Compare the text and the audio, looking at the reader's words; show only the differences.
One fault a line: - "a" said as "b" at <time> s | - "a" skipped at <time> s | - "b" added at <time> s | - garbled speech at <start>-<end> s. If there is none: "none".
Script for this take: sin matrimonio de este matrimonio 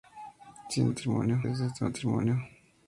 none